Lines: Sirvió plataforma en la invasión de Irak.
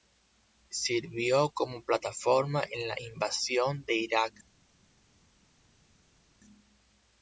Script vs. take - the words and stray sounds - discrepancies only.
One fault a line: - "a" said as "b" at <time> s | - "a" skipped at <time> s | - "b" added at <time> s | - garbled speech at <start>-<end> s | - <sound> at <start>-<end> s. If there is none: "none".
- "como" added at 1.5 s